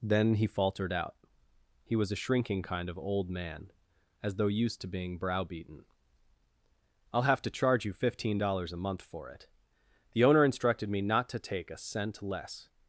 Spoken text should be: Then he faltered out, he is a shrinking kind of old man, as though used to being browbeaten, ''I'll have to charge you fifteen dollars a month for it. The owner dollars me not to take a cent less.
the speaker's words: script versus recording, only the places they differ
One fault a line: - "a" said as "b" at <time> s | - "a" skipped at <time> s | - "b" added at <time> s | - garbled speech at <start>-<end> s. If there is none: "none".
- "is" said as "was" at 1.9 s
- "dollars" said as "instructed" at 10.4 s